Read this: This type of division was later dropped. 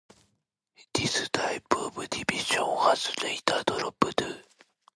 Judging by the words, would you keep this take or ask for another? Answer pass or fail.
pass